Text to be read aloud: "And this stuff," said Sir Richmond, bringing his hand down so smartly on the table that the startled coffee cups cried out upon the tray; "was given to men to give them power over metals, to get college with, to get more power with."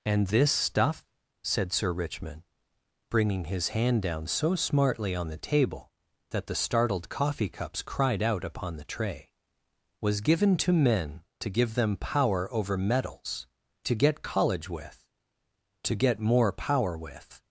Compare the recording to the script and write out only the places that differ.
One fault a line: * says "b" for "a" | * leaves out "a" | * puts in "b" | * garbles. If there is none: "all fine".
all fine